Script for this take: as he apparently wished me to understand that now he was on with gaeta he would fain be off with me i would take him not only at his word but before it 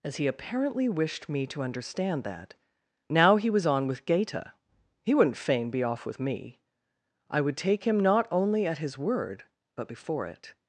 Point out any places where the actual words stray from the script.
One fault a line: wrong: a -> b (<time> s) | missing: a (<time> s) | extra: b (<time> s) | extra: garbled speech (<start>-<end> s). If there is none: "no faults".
wrong: would -> wouldn't (5.1 s)